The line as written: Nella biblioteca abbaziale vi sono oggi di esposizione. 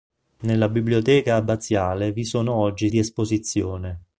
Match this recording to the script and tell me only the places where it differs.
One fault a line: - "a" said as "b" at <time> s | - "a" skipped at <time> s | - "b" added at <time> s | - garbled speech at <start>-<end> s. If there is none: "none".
none